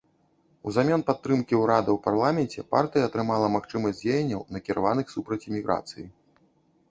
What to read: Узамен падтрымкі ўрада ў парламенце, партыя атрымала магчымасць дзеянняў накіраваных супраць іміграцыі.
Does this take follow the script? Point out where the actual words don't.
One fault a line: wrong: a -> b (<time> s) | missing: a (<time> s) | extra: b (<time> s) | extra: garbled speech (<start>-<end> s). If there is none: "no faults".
no faults